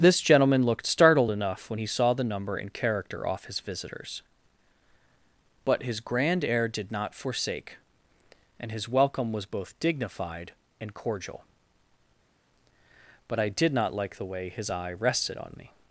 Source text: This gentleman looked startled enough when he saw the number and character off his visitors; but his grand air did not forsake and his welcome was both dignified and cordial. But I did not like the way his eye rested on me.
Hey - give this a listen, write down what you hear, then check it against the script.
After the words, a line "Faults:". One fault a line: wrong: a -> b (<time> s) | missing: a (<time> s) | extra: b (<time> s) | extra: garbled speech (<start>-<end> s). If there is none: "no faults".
This gentleman looked startled enough when he saw the number and character off his visitors; but his grand air did not forsake and his welcome was both dignified and cordial. But I did not like the way his eye rested on me.
Faults:
no faults